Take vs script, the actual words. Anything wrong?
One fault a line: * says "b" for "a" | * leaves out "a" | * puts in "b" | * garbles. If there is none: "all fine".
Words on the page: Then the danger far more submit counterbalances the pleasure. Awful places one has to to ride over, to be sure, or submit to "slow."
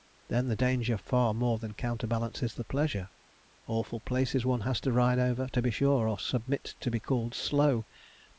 * says "than" for "submit"
* leaves out "to"
* puts in "be called"